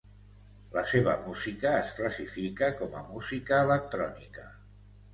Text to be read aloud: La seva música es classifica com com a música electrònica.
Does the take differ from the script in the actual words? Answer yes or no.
yes